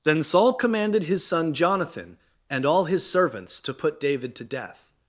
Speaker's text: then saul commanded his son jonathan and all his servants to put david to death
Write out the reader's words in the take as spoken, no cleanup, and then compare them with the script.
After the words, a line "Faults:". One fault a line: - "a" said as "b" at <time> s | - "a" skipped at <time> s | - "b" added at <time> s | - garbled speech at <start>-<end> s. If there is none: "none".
then saul commanded his son jonathan and all his servants to put david to death
Faults:
none